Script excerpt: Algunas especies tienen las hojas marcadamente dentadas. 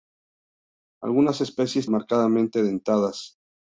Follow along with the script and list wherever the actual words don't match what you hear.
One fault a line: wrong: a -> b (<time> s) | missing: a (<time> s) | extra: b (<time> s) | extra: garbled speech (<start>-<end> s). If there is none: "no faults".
missing: tienen las hojas (1.9 s)